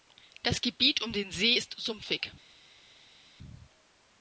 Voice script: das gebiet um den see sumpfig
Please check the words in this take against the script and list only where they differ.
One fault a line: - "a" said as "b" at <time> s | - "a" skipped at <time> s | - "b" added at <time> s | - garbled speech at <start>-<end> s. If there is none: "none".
- "ist" added at 1.5 s